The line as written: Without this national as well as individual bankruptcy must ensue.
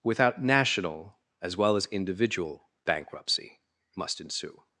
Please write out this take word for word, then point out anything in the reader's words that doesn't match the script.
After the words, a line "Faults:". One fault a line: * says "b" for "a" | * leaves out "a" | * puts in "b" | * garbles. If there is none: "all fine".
Without national as well as individual bankruptcy must ensue.
Faults:
* leaves out "this"